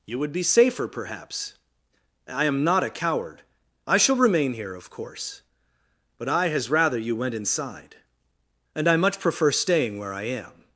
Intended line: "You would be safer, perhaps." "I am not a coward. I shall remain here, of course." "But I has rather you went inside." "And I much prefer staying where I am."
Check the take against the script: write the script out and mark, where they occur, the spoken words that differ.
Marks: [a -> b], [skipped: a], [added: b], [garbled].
"You would be safer, perhaps." "I am not a coward. I shall remain here, of course." "But I has rather you went inside." "And I much prefer staying where I am."